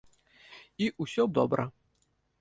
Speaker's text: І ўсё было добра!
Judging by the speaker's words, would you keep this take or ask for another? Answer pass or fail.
fail